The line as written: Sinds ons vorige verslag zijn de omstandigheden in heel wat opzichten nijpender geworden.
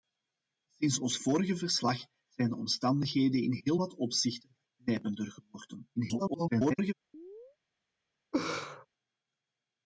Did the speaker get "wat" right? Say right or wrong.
right